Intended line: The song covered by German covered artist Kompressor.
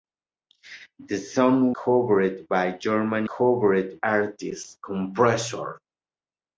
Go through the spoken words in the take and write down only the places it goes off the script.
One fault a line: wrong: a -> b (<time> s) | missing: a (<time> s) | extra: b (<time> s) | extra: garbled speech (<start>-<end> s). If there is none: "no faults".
no faults